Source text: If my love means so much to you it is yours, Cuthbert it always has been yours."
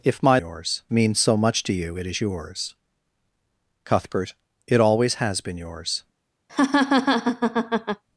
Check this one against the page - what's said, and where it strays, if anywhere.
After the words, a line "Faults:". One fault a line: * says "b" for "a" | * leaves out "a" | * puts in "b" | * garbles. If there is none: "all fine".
If my yours means so much to you it is yours, Cuthbert it always has been yours."
Faults:
* says "yours" for "love"